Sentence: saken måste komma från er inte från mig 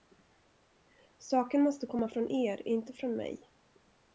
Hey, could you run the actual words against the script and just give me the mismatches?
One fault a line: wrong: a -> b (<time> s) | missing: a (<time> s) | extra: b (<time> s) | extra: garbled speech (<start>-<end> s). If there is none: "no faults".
no faults